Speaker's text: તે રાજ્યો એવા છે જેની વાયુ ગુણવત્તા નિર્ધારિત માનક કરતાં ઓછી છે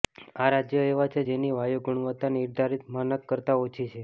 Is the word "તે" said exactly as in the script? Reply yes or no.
no